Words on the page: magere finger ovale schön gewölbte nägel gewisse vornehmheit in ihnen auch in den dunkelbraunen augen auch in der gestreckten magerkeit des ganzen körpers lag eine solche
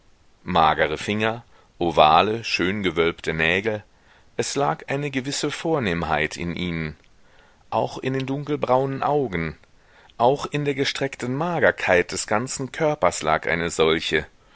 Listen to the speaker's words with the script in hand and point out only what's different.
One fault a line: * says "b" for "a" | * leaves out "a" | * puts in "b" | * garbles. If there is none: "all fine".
* puts in "es lag eine"